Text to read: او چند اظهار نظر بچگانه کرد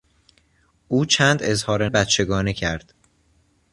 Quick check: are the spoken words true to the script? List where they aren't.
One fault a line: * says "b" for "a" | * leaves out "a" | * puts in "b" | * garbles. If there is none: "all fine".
* leaves out "نظر"